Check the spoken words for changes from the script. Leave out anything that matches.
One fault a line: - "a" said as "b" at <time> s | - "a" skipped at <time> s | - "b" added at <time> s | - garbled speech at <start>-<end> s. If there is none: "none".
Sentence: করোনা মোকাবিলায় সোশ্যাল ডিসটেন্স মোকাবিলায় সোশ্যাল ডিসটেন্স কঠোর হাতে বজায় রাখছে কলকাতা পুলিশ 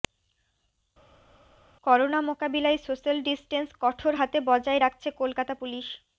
- "মোকাবিলায় সোশ্যাল ডিসটেন্স" skipped at 3.7 s